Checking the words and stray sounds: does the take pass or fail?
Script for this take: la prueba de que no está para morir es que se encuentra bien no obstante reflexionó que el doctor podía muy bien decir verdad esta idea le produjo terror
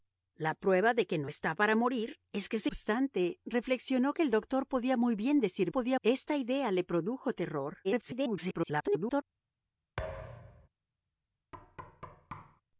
fail